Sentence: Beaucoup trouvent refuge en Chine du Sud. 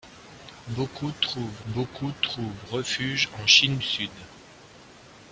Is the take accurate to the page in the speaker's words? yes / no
no